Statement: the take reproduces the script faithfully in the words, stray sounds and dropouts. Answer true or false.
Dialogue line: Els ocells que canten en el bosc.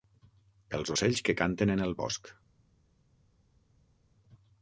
true